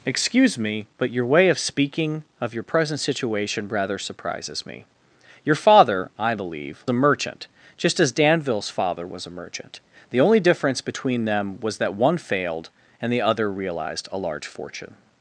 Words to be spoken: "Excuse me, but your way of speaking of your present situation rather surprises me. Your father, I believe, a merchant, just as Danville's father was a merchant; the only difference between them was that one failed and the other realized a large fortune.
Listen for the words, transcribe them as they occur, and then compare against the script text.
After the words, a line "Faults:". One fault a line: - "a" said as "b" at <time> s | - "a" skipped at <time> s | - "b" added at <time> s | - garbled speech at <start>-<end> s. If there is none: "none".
"Excuse me, but your way of speaking of your present situation rather surprises me. Your father, I believe, a merchant, just as Danville's father was a merchant; the only difference between them was that one failed and the other realized a large fortune.
Faults:
none